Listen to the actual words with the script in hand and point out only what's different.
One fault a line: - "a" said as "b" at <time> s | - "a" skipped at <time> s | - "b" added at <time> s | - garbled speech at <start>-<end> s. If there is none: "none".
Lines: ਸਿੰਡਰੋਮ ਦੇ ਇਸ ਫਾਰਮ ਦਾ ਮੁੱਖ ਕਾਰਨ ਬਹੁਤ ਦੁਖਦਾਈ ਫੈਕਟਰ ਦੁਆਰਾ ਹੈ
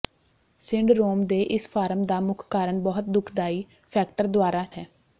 none